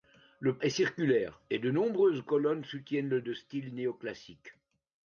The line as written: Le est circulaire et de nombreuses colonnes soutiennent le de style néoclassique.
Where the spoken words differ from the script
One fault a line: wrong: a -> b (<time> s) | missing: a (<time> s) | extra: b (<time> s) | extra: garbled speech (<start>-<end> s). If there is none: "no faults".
no faults